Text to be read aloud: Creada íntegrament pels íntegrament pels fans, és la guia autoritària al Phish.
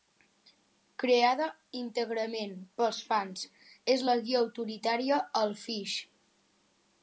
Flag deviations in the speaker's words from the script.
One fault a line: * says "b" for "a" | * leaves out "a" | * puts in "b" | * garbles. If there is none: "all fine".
* leaves out "íntegrament pels"